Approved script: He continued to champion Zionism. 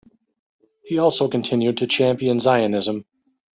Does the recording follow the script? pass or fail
fail